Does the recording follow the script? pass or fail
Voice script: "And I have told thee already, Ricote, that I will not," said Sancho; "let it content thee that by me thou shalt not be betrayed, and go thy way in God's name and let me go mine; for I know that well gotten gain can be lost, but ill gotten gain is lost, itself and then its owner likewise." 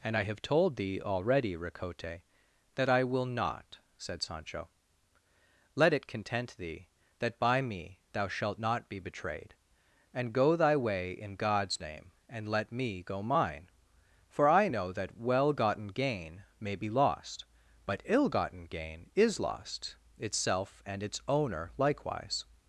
fail